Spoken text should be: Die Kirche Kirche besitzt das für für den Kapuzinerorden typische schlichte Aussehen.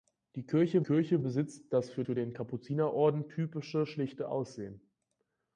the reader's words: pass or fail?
pass